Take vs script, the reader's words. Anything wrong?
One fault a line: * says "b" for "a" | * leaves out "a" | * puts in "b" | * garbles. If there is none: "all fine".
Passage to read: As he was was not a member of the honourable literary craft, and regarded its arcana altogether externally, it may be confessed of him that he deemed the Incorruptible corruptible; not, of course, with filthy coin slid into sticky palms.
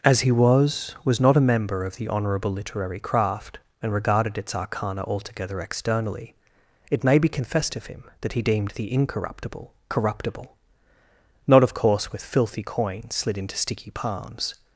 all fine